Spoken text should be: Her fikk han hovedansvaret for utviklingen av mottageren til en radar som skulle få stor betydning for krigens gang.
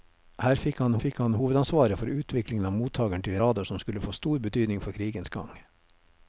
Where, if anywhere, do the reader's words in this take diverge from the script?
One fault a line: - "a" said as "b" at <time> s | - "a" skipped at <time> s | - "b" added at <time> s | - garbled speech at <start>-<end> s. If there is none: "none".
- "fikk han" added at 1.0 s
- "en" skipped at 3.4 s